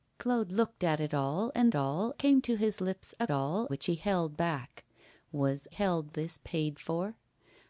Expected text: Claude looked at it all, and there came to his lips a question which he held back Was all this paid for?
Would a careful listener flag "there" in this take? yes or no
yes